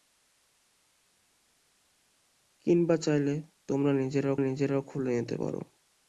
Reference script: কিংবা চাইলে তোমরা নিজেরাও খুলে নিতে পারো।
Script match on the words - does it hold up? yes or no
no